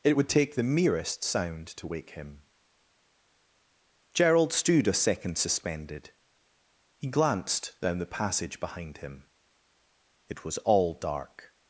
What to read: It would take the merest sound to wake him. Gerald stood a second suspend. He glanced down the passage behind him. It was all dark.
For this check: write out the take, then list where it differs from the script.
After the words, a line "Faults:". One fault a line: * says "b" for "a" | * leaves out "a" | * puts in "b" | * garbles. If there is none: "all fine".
It would take the merest sound to wake him. Gerald stood a second suspended. He glanced down the passage behind him. It was all dark.
Faults:
* says "suspended" for "suspend"